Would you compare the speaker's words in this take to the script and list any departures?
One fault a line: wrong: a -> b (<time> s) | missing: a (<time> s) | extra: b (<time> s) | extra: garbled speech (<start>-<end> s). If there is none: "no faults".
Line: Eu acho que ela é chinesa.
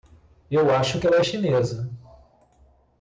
no faults